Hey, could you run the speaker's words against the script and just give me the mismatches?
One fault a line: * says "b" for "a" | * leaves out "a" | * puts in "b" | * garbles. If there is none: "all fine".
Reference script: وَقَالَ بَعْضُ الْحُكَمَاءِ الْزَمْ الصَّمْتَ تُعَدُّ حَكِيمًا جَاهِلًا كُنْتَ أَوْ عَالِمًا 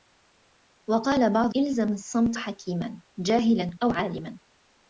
* leaves out "الْحُكَمَاءِ"
* leaves out "تُعَدُّ"
* leaves out "كُنْتَ"